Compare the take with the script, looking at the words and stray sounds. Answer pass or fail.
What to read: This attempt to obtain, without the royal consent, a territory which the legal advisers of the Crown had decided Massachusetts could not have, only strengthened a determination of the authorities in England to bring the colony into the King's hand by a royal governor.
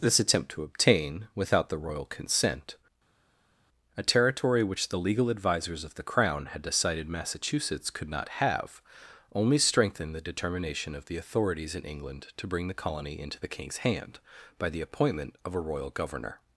fail